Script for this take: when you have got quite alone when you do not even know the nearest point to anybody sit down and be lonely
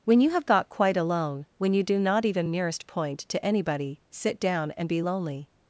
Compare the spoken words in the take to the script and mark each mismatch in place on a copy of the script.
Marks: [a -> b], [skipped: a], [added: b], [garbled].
when you have got quite alone when you do not even [skipped: know the] nearest point to anybody sit down and be lonely